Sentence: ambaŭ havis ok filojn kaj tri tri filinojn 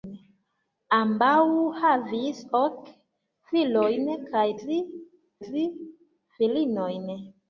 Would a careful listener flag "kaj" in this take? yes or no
no